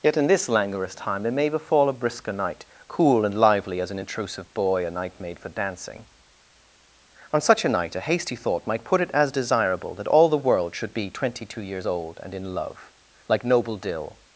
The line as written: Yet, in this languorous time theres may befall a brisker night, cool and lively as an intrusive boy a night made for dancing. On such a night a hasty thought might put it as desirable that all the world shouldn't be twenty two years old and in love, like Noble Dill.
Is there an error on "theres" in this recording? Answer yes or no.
yes